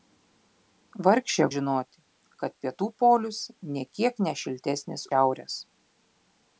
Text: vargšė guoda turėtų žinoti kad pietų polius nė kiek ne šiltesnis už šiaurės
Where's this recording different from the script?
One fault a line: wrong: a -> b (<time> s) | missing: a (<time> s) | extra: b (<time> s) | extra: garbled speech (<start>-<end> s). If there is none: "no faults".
missing: guoda turėtų (1.4 s)
missing: už (5.1 s)